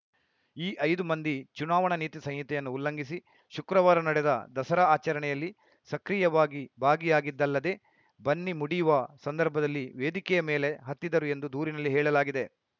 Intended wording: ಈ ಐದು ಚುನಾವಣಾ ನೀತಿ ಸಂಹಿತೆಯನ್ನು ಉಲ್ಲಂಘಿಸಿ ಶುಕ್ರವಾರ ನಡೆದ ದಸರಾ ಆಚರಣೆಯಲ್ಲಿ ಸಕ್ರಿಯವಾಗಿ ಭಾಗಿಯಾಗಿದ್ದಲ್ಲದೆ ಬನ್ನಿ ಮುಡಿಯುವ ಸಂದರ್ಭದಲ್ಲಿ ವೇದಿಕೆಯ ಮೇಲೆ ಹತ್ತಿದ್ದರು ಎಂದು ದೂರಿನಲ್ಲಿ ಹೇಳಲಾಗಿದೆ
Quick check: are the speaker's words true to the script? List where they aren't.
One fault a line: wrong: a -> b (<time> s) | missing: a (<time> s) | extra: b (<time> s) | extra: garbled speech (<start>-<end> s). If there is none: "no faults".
extra: ಮಂದಿ (1.0 s)